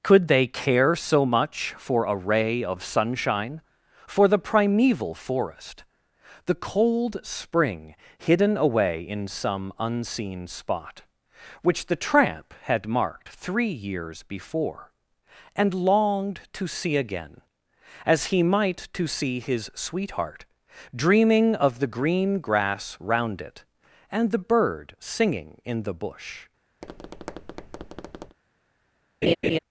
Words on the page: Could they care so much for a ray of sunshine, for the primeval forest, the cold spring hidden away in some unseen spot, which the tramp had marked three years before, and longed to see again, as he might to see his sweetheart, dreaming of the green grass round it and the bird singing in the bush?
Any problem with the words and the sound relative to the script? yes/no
yes